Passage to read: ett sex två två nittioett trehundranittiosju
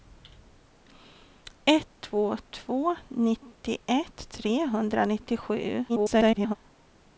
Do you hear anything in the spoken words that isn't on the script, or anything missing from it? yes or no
yes